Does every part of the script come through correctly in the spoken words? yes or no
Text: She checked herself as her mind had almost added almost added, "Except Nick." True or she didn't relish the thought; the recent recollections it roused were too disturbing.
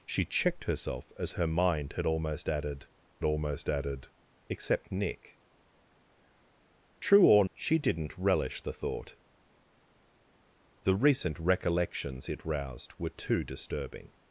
yes